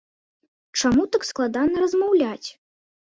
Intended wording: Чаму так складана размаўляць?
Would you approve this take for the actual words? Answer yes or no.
yes